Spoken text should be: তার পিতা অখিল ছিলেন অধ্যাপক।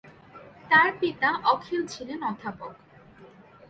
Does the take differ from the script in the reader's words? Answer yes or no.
no